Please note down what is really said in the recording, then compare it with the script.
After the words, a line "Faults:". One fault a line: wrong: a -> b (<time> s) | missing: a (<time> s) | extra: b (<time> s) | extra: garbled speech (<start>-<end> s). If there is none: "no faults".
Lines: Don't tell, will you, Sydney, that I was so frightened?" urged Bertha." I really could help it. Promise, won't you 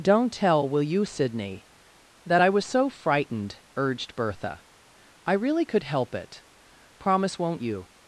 Don't tell, will you, Sydney, that I was so frightened?" urged Bertha." I really could help it. Promise, won't you
Faults:
no faults